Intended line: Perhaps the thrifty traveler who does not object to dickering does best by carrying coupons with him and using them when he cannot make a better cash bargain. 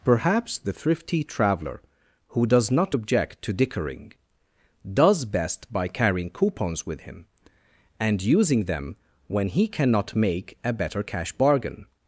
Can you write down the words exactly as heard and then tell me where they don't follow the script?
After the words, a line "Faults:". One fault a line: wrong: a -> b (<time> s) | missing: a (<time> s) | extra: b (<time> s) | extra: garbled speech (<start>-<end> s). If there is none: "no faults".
Perhaps the thrifty traveler who does not object to dickering does best by carrying coupons with him and using them when he cannot make a better cash bargain.
Faults:
no faults